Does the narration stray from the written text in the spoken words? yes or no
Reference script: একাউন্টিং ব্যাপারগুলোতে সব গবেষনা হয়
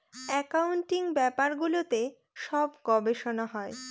no